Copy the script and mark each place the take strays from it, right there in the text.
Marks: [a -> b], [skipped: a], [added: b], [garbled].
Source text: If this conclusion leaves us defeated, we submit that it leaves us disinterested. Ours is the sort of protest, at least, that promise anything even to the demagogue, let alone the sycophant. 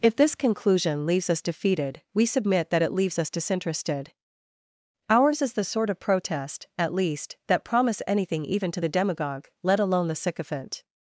If this conclusion leaves us defeated, we submit that it leaves us disinterested. Ours is the sort of protest, at least, that promise anything even to the demagogue, let alone the sycophant.